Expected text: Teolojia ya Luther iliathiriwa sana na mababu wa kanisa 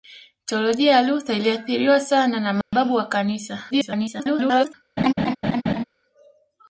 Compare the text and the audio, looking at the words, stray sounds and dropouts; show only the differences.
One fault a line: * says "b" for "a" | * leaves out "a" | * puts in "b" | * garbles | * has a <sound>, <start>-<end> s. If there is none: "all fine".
* has a dropout, 2.6-2.7 s
* garbles
* has a laugh, 5.0-5.8 s